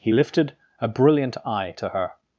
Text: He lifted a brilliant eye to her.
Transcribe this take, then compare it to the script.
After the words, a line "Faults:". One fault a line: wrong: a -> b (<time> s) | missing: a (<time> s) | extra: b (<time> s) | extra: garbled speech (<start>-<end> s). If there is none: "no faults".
He lifted a brilliant eye to her.
Faults:
no faults